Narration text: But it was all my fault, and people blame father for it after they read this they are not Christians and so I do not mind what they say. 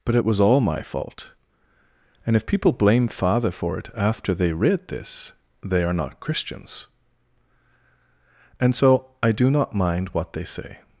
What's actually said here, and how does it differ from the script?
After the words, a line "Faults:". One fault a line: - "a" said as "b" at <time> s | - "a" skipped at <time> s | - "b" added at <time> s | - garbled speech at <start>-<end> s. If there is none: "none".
But it was all my fault, and if people blame father for it after they read this they are not Christians and so I do not mind what they say.
Faults:
- "if" added at 2.4 s